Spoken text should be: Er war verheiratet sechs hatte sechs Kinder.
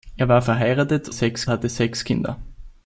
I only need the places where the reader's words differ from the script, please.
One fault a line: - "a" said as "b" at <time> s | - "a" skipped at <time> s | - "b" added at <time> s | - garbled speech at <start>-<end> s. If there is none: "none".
none